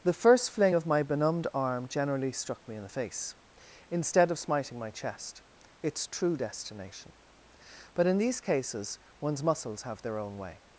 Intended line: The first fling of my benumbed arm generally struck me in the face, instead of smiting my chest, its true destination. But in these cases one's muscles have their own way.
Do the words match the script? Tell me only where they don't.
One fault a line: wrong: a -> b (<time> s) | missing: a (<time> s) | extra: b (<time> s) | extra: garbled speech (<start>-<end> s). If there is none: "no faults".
no faults